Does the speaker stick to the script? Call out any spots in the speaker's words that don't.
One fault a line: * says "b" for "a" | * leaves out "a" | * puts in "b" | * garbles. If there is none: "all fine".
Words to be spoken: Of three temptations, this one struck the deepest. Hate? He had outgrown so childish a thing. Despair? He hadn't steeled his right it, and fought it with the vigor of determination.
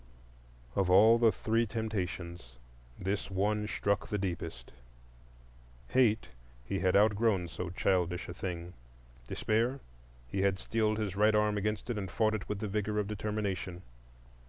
* puts in "all the"
* says "had" for "hadn't"
* puts in "arm against"